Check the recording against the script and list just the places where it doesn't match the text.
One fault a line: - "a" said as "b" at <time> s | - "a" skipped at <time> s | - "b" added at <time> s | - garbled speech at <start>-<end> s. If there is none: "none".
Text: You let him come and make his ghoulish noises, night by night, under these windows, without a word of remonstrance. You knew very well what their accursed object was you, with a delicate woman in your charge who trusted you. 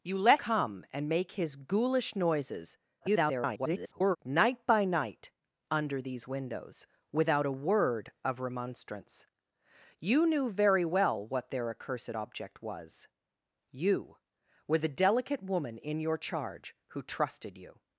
- "him" skipped at 0.4 s
- garbled speech at 3.0-4.2 s